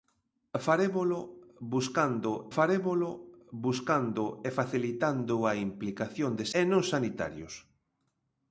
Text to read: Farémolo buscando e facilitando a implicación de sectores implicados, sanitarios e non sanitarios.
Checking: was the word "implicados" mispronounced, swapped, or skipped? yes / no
yes